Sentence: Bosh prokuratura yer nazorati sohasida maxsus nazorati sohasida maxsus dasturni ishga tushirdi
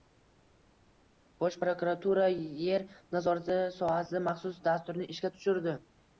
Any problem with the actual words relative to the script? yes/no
yes